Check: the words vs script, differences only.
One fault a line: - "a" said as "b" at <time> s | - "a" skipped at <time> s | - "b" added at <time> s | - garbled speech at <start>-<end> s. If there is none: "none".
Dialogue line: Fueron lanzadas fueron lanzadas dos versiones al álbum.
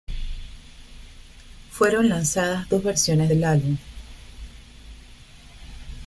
- "fueron lanzadas" skipped at 2.7 s
- "al" said as "del" at 3.3 s